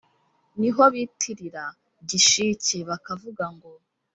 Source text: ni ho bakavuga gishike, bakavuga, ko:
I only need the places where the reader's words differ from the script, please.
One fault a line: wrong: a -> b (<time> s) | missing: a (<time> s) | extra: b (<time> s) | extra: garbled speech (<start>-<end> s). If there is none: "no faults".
wrong: bakavuga -> bitirira (0.9 s)
wrong: ko -> ngo (3.5 s)